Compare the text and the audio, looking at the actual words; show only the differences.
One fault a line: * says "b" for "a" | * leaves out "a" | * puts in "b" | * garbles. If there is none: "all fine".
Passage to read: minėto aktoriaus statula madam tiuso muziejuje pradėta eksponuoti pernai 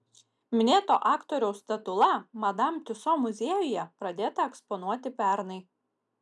all fine